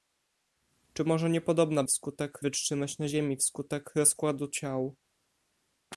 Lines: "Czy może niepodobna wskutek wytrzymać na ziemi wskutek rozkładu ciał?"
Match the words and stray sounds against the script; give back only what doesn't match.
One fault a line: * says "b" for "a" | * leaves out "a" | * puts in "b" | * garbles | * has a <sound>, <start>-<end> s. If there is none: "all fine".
all fine